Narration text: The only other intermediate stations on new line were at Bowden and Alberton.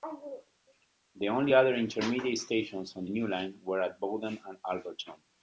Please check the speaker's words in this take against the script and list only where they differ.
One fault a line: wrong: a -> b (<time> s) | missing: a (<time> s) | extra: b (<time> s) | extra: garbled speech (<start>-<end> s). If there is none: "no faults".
no faults